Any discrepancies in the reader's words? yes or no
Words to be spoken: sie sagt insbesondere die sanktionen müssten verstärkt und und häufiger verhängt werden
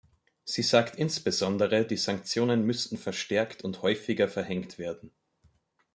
yes